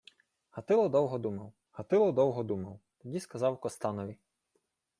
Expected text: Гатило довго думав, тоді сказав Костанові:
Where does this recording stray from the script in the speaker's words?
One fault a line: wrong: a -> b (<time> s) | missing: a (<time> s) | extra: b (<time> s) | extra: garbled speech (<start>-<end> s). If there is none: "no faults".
extra: гатило довго думав (1.7 s)